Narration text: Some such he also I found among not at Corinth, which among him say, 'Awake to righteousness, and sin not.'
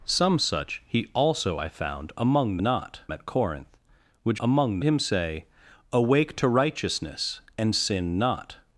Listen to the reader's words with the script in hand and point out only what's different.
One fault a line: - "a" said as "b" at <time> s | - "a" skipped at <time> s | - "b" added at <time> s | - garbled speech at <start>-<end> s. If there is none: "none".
none